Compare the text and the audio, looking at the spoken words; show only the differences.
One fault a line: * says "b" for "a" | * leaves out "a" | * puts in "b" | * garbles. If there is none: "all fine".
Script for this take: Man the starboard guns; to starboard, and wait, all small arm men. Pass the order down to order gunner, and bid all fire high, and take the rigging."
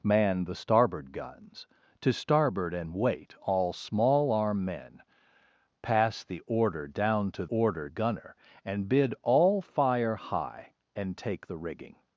all fine